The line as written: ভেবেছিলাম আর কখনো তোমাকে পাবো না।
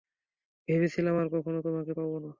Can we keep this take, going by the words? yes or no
yes